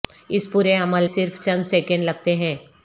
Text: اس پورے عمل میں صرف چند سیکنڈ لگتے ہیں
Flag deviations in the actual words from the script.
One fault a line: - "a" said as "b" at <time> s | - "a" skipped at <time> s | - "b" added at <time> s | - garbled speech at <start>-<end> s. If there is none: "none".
- "میں" skipped at 1.1 s